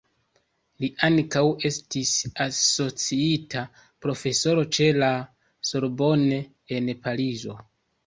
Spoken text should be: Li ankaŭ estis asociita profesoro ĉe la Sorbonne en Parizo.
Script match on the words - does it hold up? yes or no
yes